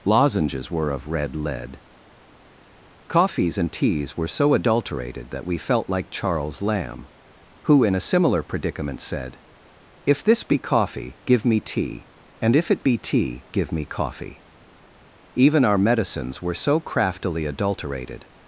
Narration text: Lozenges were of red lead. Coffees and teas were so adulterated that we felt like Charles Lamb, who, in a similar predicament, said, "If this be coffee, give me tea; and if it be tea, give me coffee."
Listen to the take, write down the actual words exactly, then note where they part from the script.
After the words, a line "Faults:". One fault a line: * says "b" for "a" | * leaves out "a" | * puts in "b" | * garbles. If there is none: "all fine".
Lozenges were of red lead. Coffees and teas were so adulterated that we felt like Charles Lamb, who, in a similar predicament, said, "If this be coffee, give me tea; and if it be tea, give me coffee." Even our medicines were so craftily adulterated
Faults:
* puts in "Even our medicines were so craftily adulterated"